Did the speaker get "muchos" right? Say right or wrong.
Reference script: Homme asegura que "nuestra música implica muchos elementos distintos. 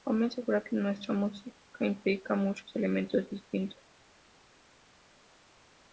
right